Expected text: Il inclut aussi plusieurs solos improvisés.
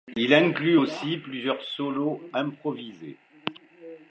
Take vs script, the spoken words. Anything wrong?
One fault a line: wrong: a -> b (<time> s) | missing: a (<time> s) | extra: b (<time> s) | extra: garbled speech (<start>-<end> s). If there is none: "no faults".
no faults